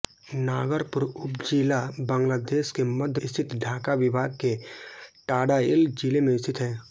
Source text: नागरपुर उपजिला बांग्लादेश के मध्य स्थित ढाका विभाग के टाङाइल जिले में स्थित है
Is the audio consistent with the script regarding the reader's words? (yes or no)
yes